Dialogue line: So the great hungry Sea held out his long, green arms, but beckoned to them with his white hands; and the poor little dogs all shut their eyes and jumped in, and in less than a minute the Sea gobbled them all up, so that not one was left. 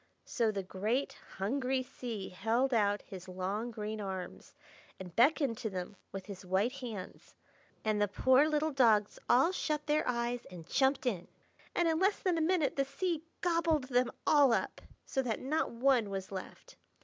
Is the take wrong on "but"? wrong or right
wrong